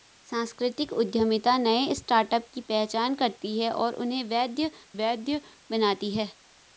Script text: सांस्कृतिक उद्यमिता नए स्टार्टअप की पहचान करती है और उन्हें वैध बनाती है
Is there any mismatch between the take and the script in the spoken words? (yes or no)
yes